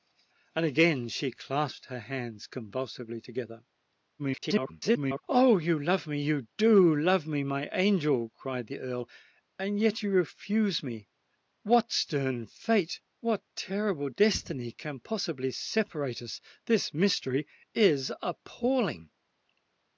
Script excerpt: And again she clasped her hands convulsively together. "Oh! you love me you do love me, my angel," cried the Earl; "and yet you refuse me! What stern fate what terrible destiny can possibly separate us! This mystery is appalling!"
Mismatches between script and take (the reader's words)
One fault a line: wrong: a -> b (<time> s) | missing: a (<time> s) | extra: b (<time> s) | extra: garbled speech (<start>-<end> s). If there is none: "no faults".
extra: garbled speech (4.2-5.2 s)